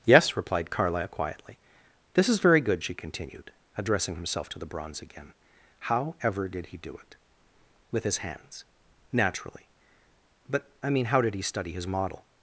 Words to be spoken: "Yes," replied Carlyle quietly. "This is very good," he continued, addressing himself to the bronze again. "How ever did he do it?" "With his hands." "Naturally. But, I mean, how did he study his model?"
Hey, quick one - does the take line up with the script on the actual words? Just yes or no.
no